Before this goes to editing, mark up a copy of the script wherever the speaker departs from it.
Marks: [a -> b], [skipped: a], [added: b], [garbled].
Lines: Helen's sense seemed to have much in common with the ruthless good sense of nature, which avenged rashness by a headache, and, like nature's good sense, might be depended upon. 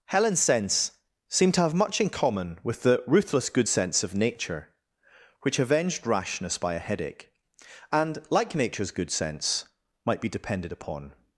Helen's sense seemed to have much in common with the ruthless good sense of nature, which avenged rashness by a headache, and, like nature's good sense, might be depended upon.